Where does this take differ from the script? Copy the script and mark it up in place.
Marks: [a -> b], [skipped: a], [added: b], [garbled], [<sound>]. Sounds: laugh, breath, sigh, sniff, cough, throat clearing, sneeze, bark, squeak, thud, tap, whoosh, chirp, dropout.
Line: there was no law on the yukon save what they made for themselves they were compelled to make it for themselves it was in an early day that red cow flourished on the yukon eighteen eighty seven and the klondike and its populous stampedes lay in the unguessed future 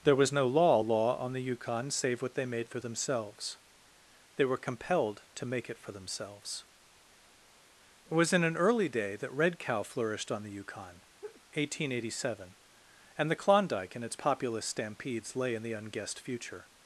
there was no law [added: law] on the yukon save what they made for themselves they were compelled to make it for themselves it was in an early day that red cow flourished on the yukon [laugh] eighteen eighty seven and the klondike and its populous stampedes lay in the unguessed future